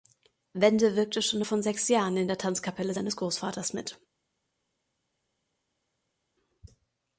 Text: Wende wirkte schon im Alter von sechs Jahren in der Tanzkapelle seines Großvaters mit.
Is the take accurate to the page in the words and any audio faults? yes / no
no